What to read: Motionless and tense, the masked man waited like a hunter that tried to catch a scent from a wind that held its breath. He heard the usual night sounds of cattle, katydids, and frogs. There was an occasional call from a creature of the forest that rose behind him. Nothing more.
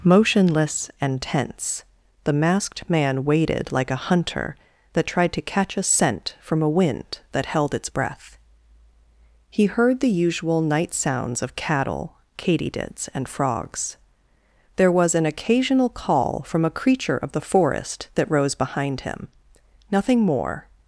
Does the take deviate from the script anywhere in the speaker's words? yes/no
no